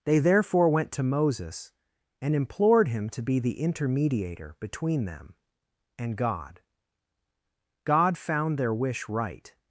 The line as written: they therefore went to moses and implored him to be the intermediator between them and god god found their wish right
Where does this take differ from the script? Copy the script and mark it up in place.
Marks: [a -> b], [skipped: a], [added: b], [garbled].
they therefore went to moses and implored him to be the intermediator between them and god god found their wish right